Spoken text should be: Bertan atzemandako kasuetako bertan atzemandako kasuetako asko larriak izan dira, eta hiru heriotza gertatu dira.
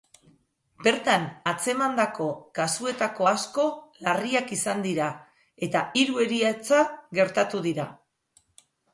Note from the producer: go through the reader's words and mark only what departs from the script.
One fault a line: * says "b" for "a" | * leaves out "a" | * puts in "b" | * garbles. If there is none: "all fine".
* leaves out "bertan atzemandako kasuetako"